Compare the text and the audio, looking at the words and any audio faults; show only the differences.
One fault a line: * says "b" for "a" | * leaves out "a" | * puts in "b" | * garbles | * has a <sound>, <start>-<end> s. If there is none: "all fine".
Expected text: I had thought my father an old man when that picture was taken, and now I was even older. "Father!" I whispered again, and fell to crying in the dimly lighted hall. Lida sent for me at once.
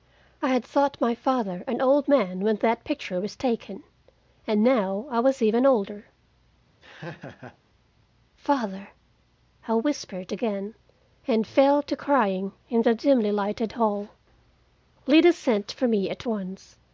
* has a laugh, 6.8-7.6 s